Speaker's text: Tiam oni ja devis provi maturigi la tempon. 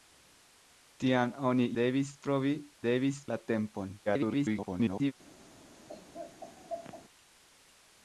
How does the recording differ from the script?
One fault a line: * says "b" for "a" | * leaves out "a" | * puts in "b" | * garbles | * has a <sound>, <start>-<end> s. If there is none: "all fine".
* leaves out "ja"
* says "devis" for "maturigi"
* garbles
* has a laugh, 5.9-7.0 s